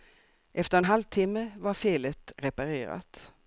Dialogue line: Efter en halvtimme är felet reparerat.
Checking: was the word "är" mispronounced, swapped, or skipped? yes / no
yes